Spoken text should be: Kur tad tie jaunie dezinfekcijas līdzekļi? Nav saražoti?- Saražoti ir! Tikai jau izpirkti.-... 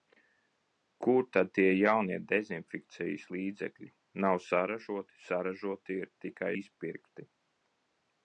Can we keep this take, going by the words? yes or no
no